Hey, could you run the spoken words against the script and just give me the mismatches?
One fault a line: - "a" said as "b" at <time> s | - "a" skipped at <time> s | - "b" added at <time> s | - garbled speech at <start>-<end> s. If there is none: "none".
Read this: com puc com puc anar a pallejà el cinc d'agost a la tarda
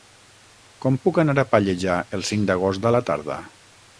- "com puc" skipped at 1.2 s